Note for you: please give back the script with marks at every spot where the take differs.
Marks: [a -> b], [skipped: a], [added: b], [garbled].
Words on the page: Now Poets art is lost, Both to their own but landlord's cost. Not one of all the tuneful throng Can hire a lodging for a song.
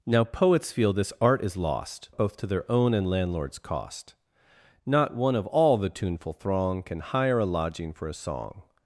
Now Poets [added: feel this] art is lost, Both to their own [but -> and] landlord's cost. Not one of all the tuneful throng Can hire a lodging for a song.